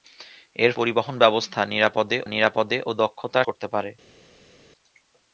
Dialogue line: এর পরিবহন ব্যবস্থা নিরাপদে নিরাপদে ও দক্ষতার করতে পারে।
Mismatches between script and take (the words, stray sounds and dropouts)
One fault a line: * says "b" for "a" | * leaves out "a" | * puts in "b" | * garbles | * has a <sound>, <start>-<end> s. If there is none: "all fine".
all fine